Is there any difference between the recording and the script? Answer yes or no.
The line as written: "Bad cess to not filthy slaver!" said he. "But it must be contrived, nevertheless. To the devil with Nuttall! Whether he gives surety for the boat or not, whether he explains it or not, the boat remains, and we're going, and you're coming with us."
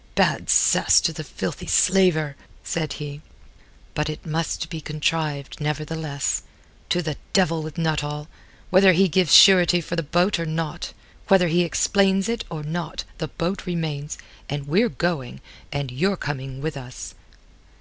yes